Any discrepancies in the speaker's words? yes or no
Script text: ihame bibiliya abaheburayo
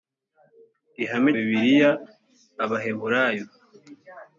no